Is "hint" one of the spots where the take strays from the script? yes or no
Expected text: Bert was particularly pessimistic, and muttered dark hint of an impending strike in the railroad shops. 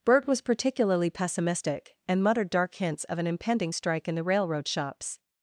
yes